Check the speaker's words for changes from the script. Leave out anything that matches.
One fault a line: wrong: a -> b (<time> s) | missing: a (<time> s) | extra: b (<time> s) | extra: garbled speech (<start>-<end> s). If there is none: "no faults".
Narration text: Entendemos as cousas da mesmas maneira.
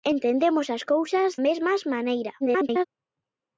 missing: da (1.3 s)
extra: garbled speech (2.4-2.9 s)